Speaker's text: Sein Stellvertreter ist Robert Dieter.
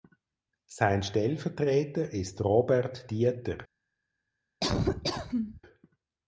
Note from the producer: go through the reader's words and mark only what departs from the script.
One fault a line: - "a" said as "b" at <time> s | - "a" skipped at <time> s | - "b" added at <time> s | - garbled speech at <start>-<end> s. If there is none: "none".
none